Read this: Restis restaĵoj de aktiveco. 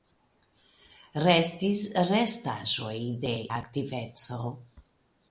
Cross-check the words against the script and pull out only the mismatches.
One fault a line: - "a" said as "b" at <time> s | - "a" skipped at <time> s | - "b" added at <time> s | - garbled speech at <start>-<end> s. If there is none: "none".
none